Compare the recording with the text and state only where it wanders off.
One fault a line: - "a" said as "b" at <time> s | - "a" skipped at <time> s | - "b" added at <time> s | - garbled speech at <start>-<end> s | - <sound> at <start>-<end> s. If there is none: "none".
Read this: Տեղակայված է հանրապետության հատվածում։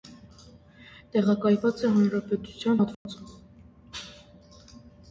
- dropout at 2.9-3.1 s